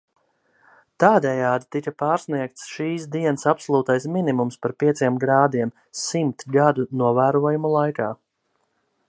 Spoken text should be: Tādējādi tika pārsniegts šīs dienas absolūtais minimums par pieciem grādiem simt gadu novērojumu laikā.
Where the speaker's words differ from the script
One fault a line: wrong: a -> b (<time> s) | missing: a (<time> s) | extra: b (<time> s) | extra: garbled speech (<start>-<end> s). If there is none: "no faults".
no faults